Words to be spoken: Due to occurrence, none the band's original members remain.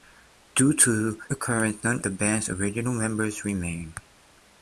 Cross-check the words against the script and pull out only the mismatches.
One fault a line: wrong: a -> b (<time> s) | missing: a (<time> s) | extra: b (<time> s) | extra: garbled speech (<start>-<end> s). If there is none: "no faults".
no faults